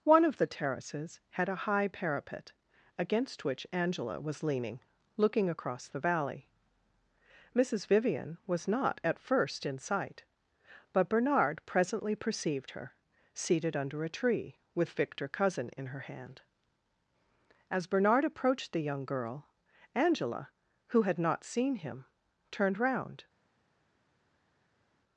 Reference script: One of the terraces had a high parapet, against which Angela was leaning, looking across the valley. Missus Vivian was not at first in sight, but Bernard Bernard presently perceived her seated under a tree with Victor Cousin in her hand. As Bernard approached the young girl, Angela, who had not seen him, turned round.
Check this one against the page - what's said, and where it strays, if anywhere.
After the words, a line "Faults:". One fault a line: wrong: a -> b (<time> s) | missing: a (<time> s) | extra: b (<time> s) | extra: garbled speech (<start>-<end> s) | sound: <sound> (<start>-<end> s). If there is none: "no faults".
One of the terraces had a high parapet, against which Angela was leaning, looking across the valley. Missus Vivian was not at first in sight, but Bernard presently perceived her seated under a tree with Victor Cousin in her hand. As Bernard approached the young girl, Angela, who had not seen him, turned round.
Faults:
missing: Bernard (11.6 s)